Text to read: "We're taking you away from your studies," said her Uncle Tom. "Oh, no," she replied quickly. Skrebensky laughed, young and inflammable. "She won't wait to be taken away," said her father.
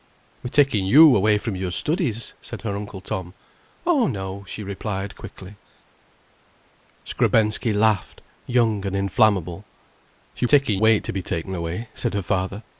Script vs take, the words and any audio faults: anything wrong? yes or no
yes